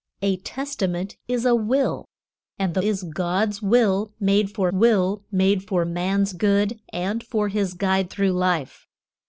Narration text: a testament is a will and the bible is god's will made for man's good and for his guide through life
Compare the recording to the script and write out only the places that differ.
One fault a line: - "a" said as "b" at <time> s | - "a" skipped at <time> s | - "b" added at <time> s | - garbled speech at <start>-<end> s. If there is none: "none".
- "bible" skipped at 2.8 s
- "will made for" added at 4.7 s